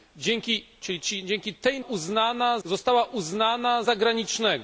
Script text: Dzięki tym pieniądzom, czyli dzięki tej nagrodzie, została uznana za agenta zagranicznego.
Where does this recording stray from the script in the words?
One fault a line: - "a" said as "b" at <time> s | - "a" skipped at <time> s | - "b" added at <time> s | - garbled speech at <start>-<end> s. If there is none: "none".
- "tym pieniądzom" skipped at 0.7 s
- "nagrodzie" said as "uznana" at 1.8 s
- "za agenta" skipped at 3.8 s